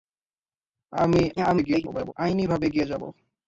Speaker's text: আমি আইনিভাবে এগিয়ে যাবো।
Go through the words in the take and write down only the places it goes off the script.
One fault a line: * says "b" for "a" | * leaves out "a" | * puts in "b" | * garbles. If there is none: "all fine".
* garbles